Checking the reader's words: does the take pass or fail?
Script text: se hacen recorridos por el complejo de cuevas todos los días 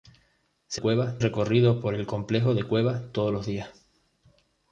fail